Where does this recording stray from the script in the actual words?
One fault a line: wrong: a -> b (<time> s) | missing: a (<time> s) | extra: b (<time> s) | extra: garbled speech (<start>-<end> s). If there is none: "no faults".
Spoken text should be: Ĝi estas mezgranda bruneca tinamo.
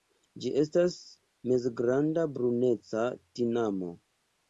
no faults